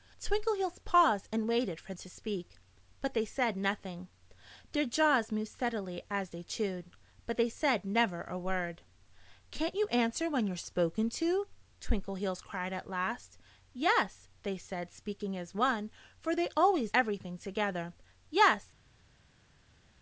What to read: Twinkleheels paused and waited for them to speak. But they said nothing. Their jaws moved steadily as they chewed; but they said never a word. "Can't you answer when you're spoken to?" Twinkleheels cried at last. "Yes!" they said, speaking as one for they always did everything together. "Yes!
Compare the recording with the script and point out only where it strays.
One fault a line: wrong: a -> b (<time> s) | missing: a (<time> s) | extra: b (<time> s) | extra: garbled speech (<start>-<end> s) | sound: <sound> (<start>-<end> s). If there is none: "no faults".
missing: them (1.9 s)
missing: did (16.9 s)